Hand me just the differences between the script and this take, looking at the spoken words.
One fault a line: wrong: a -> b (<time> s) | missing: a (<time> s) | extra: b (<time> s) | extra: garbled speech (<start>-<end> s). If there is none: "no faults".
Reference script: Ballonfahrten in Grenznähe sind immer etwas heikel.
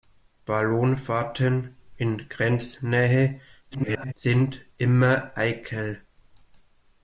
extra: garbled speech (3.7-4.1 s)
missing: etwas (5.3 s)